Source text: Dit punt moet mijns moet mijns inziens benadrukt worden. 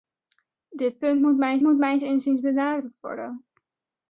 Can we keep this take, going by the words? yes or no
yes